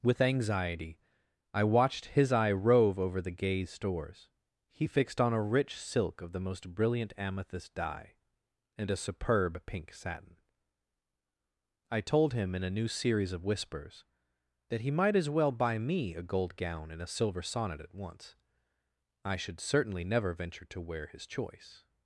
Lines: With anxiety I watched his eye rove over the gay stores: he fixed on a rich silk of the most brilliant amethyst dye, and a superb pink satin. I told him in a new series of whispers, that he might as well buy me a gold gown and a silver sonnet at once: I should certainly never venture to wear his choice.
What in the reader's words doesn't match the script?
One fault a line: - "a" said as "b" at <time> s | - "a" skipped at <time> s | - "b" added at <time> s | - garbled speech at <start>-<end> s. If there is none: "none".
none